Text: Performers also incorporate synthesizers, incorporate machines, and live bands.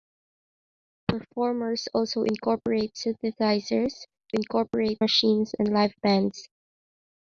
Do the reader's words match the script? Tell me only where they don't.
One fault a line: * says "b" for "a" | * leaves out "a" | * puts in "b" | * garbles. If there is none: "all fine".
all fine